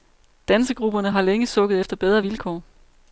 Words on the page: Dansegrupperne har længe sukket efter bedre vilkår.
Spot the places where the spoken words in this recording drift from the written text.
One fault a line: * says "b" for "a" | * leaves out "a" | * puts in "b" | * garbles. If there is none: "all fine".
all fine